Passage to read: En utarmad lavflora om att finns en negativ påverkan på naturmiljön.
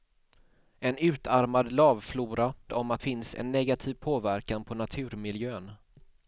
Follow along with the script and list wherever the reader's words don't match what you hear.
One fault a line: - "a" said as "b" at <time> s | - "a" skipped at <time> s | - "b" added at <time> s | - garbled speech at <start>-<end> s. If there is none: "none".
none